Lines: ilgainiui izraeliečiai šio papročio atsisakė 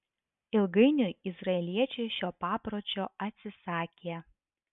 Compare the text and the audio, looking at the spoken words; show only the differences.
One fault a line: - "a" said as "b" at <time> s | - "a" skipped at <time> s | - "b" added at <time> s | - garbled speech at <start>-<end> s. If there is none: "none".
none